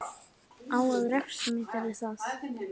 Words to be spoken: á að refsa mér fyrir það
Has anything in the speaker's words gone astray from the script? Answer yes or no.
no